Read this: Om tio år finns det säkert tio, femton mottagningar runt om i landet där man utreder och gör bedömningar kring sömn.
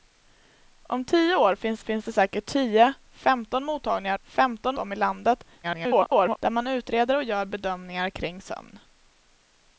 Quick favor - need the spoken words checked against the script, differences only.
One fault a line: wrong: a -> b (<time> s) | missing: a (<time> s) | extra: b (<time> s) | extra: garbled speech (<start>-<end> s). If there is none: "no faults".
extra: finns (1.8 s)
wrong: runt -> femton (4.2 s)
extra: garbled speech (5.6-6.4 s)